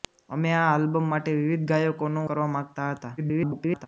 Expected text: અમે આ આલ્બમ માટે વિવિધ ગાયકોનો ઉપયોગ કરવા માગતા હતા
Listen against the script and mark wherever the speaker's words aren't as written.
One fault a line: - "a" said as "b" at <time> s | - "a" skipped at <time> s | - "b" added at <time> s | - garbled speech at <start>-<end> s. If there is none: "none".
- "ઉપયોગ" skipped at 2.2 s
- garbled speech at 3.2-3.9 s